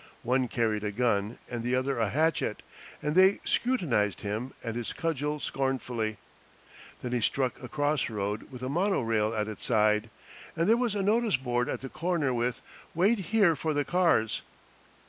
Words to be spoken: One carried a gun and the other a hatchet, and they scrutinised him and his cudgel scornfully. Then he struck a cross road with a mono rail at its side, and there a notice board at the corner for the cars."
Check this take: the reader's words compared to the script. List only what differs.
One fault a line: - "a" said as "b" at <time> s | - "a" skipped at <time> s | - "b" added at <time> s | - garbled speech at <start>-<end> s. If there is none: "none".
- "was" added at 10.8 s
- "with Wait here" added at 12.3 s